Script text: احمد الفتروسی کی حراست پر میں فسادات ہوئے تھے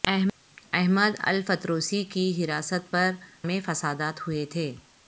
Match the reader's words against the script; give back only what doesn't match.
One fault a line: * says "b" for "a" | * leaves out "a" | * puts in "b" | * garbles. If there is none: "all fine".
all fine